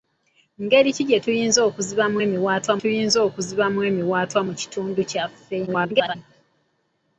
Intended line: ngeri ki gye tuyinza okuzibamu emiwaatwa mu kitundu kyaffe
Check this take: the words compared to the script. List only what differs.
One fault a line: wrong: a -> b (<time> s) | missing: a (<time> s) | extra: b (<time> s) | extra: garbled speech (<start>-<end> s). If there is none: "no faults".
extra: tuyinza okuzibamu emiwaatwa (2.8 s)
extra: garbled speech (5.7-6.2 s)